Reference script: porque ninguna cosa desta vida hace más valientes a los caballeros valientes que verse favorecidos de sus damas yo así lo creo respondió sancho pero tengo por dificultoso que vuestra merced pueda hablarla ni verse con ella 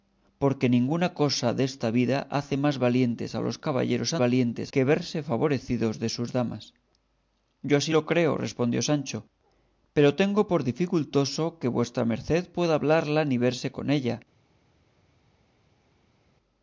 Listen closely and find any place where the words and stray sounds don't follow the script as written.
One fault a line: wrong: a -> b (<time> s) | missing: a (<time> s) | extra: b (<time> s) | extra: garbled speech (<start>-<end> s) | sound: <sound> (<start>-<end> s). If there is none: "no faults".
no faults